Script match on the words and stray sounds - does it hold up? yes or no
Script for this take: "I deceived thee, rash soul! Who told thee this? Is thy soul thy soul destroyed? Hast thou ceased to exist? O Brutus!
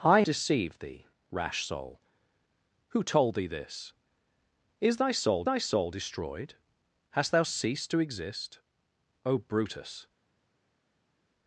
yes